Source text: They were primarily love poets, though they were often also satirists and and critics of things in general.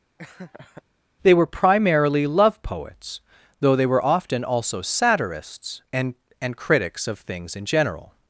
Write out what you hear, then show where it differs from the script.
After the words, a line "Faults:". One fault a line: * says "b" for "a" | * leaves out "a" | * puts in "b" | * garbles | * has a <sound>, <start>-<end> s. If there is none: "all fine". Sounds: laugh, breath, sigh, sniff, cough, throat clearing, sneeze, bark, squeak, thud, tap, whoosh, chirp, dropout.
They were primarily love poets, though they were often also satirists and and critics of things in general.
Faults:
* has a laugh, 0.2-0.8 s